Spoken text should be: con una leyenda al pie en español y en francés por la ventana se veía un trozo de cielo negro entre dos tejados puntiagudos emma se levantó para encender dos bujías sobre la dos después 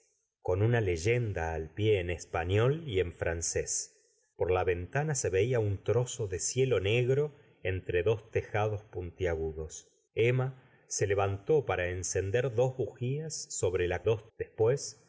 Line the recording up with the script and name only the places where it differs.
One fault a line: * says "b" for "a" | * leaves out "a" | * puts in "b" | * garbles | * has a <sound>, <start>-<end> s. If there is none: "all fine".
all fine